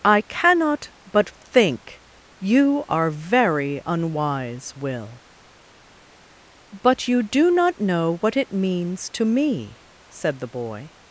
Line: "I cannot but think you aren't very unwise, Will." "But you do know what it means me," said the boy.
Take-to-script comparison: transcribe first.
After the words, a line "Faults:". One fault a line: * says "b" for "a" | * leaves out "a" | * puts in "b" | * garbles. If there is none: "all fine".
"I cannot but think you are very unwise, Will." "But you do not know what it means to me," said the boy.
Faults:
* says "are" for "aren't"
* puts in "not"
* puts in "to"